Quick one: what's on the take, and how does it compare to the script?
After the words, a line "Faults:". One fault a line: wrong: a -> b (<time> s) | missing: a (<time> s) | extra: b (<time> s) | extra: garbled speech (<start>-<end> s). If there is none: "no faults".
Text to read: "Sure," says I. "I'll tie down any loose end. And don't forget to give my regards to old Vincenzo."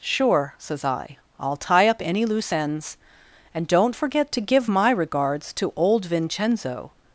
"Sure," says I. "I'll tie up any loose ends. And don't forget to give my regards to old Vincenzo."
Faults:
wrong: down -> up (1.9 s)
wrong: end -> ends (2.5 s)